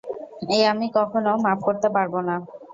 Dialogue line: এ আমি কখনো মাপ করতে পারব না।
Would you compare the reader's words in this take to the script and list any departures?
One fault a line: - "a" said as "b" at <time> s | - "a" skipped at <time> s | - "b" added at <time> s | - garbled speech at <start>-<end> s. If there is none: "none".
none